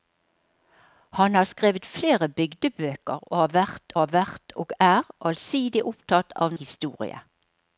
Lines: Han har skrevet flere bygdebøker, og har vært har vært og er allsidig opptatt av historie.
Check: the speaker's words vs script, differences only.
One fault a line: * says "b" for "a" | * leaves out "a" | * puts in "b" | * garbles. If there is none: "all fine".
all fine